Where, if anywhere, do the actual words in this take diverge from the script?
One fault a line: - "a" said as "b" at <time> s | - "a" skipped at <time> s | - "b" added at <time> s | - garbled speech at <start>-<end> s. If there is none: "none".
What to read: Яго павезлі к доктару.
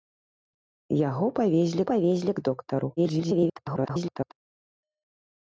- "павезлі" added at 1.9 s
- garbled speech at 3.0-4.3 s